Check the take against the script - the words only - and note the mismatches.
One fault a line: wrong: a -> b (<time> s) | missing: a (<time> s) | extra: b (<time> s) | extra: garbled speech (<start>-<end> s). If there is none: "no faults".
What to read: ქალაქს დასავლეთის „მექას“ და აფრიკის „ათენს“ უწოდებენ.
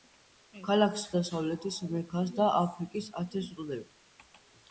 no faults